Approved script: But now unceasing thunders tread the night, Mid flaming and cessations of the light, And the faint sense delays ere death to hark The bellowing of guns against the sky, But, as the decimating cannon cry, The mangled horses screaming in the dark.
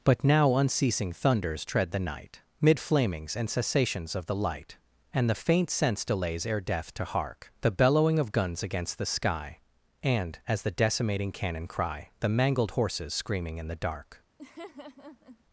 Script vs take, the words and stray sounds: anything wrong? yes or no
yes